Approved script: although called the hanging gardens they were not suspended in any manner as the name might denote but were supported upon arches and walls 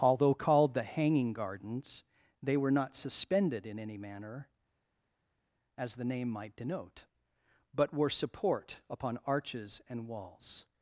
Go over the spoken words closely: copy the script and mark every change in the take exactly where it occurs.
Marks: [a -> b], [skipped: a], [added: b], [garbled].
although called the hanging gardens they were not suspended in any manner as the name might denote but were [supported -> support] upon arches and walls